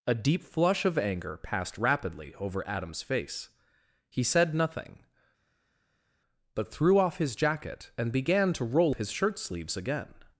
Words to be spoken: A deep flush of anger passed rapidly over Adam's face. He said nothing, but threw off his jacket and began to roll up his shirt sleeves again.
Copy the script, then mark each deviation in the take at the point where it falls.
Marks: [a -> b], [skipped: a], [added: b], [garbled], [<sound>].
A deep flush of anger passed rapidly over Adam's face. He said nothing, but threw off his jacket and began to roll [skipped: up] his shirt sleeves again.